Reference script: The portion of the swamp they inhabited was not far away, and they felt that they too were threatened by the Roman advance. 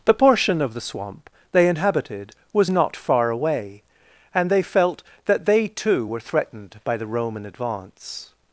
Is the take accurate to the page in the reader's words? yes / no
yes